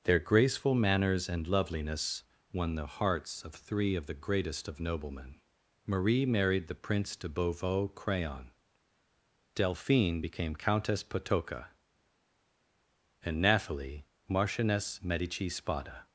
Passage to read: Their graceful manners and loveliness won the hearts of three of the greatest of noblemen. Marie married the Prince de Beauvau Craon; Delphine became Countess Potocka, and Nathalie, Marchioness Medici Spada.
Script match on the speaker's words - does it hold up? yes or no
yes